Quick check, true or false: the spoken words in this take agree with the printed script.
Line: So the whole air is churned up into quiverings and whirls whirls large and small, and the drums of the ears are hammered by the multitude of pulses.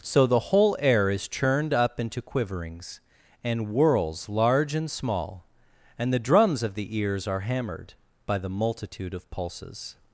false